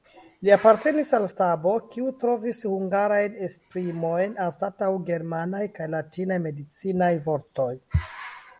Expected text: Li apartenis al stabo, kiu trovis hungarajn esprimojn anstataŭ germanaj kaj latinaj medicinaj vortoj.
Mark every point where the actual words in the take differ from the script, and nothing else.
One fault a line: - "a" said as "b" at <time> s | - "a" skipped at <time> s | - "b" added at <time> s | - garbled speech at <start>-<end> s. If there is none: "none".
none